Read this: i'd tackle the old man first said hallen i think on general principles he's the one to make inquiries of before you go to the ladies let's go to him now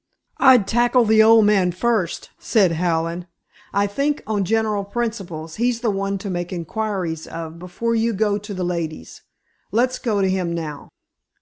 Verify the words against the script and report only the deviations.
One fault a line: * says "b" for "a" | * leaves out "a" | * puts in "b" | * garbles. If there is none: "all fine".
all fine